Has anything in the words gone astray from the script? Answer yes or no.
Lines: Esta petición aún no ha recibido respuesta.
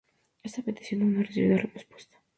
no